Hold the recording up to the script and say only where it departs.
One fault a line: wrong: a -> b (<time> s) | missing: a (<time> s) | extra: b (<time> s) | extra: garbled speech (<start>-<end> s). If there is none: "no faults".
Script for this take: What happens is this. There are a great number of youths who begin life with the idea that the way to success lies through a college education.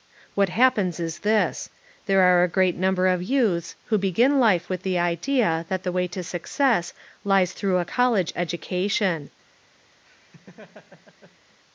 no faults